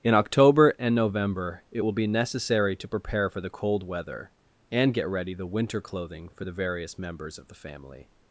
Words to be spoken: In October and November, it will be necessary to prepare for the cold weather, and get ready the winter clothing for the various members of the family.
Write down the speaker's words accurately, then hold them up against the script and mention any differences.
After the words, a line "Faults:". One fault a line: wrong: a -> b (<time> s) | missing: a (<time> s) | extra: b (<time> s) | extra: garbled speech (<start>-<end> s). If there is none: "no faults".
In October and November, it will be necessary to prepare for the cold weather, and get ready the winter clothing for the various members of the family.
Faults:
no faults